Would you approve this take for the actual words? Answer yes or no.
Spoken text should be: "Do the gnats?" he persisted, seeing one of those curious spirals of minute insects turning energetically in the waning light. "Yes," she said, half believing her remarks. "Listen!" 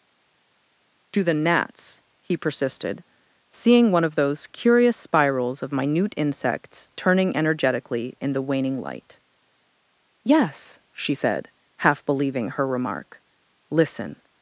no